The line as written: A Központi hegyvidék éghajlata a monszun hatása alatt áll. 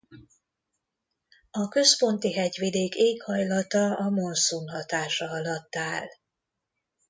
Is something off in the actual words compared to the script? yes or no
no